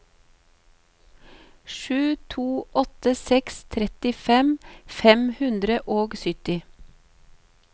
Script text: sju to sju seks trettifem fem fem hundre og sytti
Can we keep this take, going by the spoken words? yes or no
no